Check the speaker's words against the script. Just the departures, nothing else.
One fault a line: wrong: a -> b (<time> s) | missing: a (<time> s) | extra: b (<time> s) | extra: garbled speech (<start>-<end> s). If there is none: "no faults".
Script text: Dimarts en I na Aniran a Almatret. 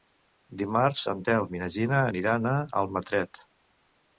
extra: Telm (1.3 s)
extra: Gina (1.8 s)